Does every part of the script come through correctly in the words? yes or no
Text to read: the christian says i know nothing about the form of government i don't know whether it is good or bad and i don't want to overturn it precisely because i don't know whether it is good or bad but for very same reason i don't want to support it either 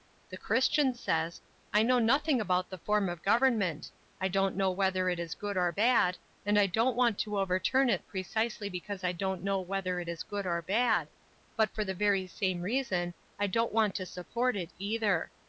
no